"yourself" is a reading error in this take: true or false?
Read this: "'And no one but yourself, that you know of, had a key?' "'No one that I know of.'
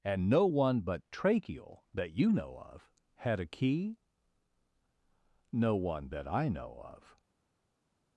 true